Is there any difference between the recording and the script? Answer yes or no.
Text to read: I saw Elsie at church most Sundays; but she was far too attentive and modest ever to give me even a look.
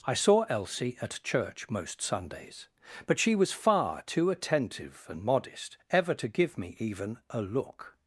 no